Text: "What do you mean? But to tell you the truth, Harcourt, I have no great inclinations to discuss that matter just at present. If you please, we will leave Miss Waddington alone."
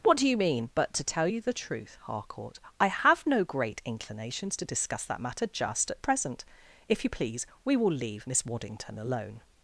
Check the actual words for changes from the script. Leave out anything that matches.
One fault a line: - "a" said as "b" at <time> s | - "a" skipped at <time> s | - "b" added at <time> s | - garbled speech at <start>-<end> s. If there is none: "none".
none